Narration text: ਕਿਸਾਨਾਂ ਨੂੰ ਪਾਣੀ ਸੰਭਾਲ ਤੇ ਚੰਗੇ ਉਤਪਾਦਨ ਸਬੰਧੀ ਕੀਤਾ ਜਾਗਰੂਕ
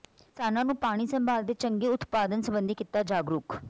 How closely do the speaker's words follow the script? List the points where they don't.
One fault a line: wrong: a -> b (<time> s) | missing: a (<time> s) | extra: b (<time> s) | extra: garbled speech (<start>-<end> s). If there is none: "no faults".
no faults